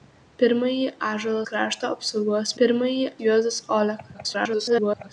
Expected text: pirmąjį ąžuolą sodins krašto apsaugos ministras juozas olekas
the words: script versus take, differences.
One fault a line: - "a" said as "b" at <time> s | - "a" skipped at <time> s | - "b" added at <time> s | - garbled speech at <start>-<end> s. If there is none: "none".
- "sodins" skipped at 1.4 s
- "ministras" said as "pirmąjį" at 2.6 s
- garbled speech at 4.1-5.1 s